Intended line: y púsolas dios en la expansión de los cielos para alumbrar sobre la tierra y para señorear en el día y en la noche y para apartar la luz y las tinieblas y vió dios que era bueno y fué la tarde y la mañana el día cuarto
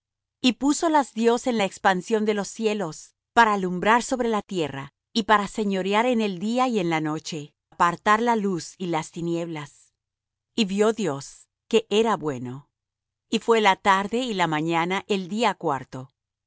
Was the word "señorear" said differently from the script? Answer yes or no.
no